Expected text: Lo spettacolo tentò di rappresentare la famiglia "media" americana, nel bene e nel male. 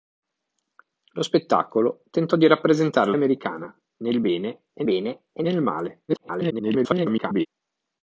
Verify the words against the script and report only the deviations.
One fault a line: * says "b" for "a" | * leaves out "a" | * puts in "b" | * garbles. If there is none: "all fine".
* says "americana nel bene e" for "la famiglia media americana nel"
* garbles